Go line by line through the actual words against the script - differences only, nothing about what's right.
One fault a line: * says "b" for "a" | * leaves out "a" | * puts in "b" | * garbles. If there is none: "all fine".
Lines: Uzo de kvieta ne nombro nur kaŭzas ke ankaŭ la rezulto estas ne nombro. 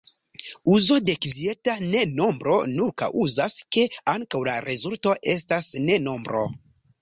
all fine